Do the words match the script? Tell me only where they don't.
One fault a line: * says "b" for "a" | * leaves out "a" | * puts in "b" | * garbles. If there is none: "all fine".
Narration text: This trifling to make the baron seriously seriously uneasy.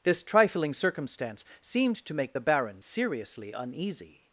* puts in "circumstance seemed"
* leaves out "seriously"